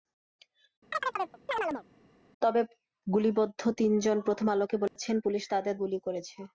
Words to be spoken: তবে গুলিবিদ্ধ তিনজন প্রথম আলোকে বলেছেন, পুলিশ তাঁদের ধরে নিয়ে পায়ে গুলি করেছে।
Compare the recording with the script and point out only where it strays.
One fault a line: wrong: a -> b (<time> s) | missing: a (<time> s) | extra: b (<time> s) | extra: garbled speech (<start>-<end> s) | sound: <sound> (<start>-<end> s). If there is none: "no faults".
sound: chirp (0.9-1.8 s)
sound: dropout (4.9-5.0 s)
missing: ধরে নিয়ে পায়ে (5.8 s)